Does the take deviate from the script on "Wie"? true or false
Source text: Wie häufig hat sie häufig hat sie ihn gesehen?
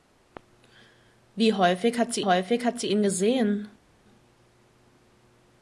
false